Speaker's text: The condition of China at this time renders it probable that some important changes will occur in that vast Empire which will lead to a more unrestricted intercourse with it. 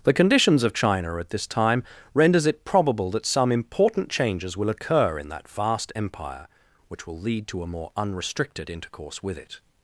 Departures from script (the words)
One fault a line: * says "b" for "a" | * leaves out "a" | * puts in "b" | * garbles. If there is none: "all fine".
* says "conditions" for "condition"